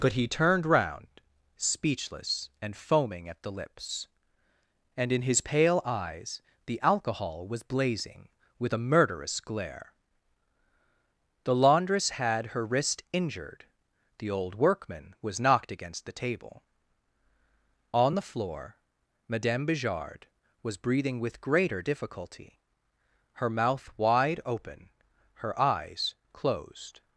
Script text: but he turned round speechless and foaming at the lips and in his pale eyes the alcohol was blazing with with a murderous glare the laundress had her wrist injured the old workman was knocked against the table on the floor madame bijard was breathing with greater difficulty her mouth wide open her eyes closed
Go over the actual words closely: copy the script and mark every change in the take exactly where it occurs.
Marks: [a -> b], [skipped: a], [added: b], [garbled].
but he turned round speechless and foaming at the lips and in his pale eyes the alcohol was blazing with [skipped: with] a murderous glare the laundress had her wrist injured the old workman was knocked against the table on the floor madame bijard was breathing with greater difficulty her mouth wide open her eyes closed